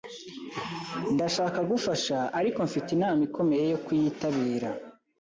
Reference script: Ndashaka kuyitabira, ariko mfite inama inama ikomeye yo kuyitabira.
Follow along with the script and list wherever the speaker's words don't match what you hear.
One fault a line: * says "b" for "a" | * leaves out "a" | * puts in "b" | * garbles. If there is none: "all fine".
* says "gufasha" for "kuyitabira"
* leaves out "inama"